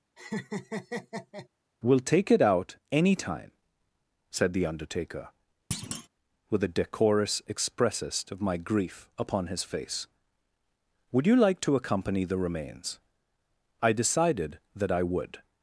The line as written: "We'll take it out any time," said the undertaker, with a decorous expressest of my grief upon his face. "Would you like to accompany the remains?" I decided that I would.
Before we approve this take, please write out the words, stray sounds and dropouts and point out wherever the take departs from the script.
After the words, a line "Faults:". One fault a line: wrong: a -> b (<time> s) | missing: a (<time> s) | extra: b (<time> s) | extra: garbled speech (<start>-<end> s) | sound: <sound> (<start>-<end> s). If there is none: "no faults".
"We'll take it out any time," said the undertaker, with a decorous expressest of my grief upon his face. "Would you like to accompany the remains?" I decided that I would.
Faults:
sound: laugh (0.2-1.5 s)
sound: thud (5.7-6.1 s)